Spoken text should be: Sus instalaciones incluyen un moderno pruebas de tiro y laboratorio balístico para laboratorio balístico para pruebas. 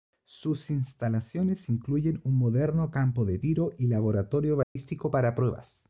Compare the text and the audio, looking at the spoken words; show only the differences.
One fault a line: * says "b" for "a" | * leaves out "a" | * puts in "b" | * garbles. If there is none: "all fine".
* says "campo" for "pruebas"
* leaves out "laboratorio balístico para"